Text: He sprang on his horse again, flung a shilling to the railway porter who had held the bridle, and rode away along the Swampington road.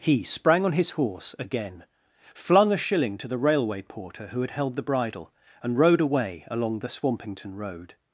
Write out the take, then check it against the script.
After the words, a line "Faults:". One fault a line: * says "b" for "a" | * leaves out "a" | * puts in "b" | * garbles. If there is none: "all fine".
He sprang on his horse again, flung a shilling to the railway porter who had held the bridle, and rode away along the Swampington road.
Faults:
all fine